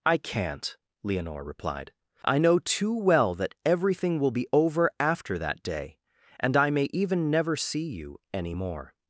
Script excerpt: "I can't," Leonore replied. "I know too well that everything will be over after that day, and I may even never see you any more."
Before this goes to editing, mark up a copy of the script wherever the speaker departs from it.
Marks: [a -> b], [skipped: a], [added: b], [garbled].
"I can't," Leonore replied. "I know too well that everything will be over after that day, and I may even never see you any more."